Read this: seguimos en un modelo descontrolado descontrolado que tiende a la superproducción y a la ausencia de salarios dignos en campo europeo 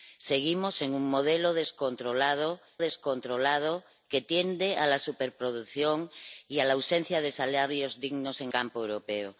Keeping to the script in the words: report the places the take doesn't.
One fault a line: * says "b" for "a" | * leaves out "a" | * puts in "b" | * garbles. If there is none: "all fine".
all fine